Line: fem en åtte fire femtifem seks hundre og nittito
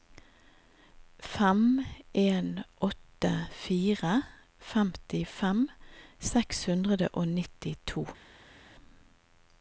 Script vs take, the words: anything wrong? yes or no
no